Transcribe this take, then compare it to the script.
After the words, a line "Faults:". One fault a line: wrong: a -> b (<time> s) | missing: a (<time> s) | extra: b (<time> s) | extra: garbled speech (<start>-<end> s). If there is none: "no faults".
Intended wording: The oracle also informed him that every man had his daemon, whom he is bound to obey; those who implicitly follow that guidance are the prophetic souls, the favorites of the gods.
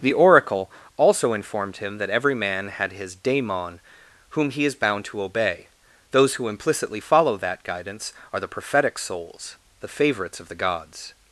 The oracle also informed him that every man had his daemon, whom he is bound to obey; those who implicitly follow that guidance are the prophetic souls, the favorites of the gods.
Faults:
no faults